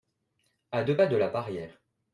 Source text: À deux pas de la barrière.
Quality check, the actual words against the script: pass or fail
pass